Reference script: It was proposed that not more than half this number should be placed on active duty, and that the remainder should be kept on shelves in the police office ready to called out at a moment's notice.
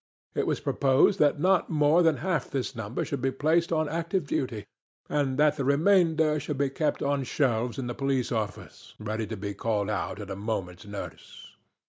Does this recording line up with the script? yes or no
no